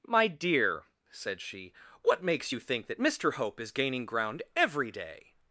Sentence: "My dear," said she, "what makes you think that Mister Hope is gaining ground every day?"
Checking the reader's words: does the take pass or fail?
pass